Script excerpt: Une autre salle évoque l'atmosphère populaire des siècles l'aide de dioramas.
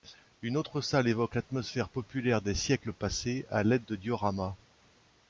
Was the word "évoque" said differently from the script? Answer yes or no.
no